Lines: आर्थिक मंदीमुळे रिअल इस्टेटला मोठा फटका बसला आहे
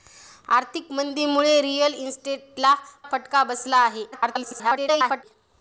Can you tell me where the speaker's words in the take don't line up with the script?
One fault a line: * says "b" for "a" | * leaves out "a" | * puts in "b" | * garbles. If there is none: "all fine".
* leaves out "मोठा"
* garbles